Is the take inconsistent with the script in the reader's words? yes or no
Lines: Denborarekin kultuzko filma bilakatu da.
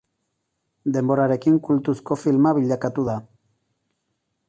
no